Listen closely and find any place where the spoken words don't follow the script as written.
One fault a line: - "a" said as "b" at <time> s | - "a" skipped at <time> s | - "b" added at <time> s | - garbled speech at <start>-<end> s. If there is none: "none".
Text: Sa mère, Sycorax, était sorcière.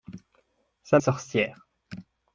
- "mère Sycorax était" skipped at 1.0 s